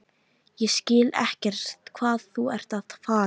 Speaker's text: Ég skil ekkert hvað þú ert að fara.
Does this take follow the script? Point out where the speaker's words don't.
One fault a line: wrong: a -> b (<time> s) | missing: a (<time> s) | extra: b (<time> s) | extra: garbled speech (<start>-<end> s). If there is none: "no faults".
no faults